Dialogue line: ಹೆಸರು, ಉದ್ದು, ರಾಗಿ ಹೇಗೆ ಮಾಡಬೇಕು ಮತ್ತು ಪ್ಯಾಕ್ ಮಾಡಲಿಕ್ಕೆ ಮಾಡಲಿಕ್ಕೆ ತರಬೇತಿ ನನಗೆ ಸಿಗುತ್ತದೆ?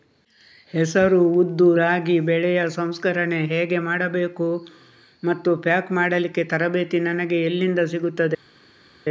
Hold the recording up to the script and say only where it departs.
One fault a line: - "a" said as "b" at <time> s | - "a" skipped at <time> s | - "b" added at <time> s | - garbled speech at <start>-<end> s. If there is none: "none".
- "ಬೆಳೆಯ ಸಂಸ್ಕರಣೆ" added at 2.2 s
- "ಮಾಡಲಿಕ್ಕೆ" skipped at 6.4 s
- "ಎಲ್ಲಿಂದ" added at 7.4 s